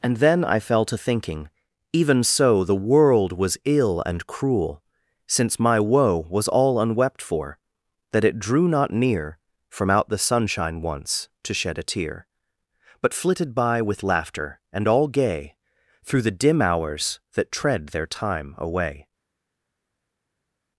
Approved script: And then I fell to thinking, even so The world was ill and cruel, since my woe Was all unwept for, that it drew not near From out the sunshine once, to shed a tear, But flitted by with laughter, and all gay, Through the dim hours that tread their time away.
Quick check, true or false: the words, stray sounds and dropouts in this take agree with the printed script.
true